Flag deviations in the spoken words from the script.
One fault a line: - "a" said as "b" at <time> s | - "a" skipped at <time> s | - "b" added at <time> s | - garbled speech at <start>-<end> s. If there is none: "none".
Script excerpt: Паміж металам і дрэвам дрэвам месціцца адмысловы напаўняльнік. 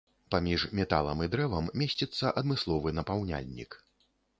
- "дрэвам" skipped at 1.7 s